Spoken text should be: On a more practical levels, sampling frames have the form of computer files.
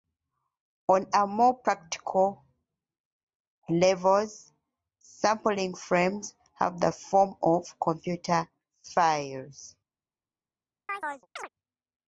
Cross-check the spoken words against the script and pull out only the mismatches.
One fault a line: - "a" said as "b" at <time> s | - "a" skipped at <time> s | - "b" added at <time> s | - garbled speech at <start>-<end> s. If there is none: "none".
none